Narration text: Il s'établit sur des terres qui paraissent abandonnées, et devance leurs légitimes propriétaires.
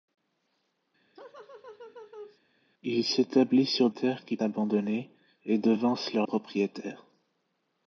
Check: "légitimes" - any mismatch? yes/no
yes